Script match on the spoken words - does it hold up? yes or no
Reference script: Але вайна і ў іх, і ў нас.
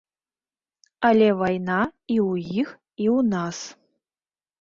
yes